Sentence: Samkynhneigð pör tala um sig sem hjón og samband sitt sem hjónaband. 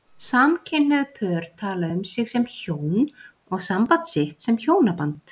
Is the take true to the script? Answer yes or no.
yes